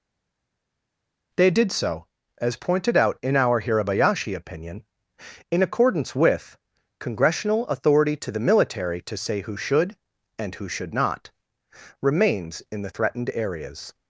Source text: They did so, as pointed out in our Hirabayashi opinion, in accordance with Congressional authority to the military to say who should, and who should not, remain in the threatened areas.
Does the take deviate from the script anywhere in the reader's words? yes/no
yes